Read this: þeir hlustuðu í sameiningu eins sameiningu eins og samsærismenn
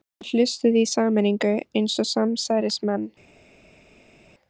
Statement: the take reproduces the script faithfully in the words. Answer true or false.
false